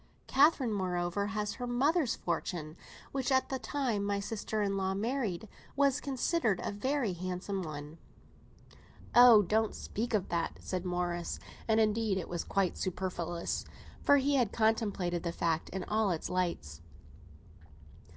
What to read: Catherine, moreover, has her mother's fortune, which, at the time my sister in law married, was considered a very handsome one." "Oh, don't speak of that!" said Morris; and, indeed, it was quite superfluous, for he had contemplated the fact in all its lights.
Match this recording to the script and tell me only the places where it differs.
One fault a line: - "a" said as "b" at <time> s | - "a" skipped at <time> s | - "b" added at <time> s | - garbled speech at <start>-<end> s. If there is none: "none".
none